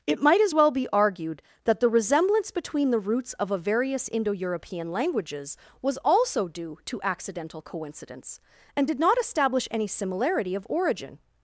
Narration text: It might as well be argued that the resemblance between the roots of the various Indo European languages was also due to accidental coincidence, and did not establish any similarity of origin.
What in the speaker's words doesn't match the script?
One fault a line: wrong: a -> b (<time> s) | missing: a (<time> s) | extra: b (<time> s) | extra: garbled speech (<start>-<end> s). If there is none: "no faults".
wrong: the -> a (3.5 s)